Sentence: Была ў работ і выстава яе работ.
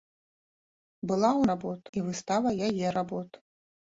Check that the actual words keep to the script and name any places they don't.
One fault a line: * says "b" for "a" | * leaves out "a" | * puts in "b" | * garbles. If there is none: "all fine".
all fine